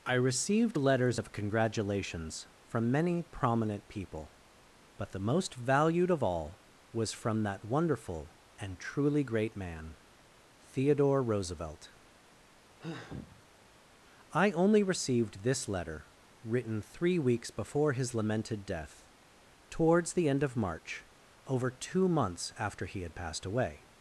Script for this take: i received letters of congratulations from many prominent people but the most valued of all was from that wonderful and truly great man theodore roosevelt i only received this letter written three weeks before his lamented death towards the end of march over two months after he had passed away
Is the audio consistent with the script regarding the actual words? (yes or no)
yes